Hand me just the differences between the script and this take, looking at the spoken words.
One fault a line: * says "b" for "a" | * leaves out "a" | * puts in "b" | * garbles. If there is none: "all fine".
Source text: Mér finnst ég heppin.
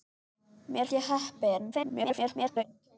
* leaves out "finnst"
* garbles